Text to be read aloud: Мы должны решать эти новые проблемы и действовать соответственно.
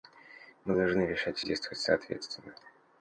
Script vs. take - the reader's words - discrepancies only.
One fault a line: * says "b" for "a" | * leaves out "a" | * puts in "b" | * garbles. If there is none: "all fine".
* leaves out "эти новые проблемы"